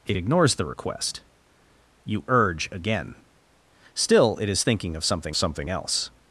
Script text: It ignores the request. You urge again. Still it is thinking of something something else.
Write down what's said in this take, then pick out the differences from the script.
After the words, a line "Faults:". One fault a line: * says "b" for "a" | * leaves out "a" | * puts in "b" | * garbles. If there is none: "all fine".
It ignores the request. You urge again. Still it is thinking of something something else.
Faults:
all fine